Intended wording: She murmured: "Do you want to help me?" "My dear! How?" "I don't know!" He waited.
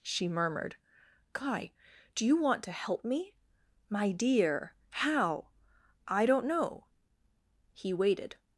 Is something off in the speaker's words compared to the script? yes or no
yes